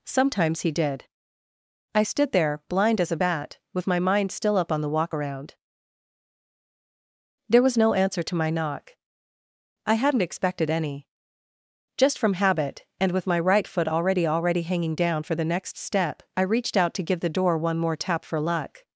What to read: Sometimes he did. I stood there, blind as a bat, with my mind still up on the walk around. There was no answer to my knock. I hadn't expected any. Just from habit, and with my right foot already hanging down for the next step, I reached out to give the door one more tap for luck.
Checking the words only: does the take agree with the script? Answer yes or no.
no